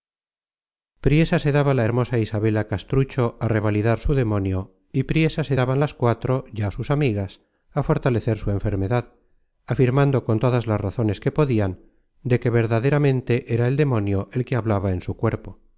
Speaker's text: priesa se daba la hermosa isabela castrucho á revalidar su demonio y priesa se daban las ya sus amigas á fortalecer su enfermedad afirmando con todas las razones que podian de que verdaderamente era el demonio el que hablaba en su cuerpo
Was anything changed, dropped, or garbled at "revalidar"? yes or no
no